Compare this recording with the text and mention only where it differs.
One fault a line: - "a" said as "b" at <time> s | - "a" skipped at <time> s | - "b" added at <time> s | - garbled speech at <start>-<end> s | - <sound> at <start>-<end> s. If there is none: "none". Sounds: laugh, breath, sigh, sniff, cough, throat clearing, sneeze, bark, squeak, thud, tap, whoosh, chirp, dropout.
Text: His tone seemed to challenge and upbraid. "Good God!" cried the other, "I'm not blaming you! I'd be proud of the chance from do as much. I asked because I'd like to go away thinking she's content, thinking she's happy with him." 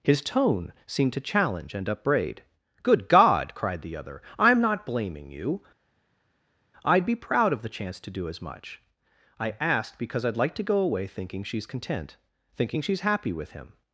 - "from" said as "to" at 8.0 s